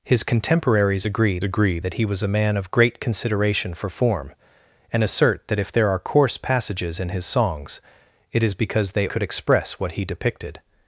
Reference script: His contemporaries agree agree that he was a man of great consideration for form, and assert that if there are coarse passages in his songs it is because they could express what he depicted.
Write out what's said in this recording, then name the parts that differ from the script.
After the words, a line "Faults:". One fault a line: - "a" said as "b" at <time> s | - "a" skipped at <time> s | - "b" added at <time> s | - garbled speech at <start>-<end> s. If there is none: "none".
His contemporaries agree agree that he was a man of great consideration for form, and assert that if there are coarse passages in his songs it is because they could express what he depicted.
Faults:
none